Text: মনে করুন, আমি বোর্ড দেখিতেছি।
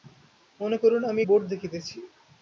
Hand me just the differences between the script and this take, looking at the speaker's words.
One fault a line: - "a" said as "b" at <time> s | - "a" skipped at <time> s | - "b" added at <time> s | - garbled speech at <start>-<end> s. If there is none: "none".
none